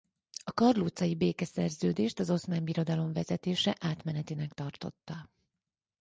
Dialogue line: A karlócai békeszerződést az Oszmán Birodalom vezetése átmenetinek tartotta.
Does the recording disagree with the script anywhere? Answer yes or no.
no